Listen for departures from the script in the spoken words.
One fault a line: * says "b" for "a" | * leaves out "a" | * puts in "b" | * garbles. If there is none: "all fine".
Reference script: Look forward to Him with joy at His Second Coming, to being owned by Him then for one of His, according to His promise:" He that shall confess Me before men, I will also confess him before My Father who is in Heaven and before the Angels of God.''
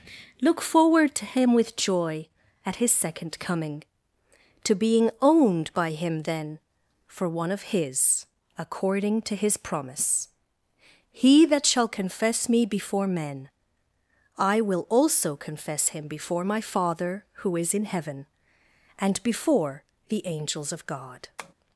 all fine